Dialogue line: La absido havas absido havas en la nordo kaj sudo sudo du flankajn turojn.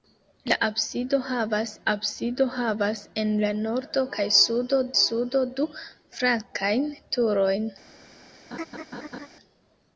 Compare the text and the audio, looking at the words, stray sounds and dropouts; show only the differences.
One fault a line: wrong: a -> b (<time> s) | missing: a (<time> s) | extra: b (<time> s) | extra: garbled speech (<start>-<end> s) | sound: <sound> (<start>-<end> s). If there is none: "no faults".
sound: laugh (8.5-9.3 s)